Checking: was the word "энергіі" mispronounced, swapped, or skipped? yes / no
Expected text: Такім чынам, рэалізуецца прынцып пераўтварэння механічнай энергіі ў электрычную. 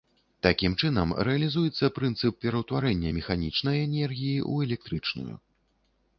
no